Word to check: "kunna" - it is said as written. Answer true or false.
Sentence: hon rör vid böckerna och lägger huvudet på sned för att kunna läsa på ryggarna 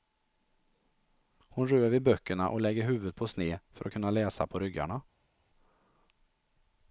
true